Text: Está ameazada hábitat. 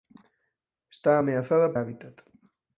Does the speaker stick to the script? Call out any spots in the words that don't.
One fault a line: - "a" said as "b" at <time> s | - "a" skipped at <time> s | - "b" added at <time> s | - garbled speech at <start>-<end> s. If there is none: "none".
none